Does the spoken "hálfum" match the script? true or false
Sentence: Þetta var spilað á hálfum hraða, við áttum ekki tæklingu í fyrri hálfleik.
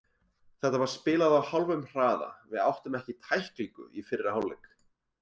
true